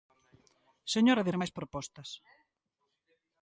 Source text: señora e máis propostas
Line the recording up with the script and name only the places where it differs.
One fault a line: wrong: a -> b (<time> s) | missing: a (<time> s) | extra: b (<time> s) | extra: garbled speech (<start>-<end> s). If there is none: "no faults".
no faults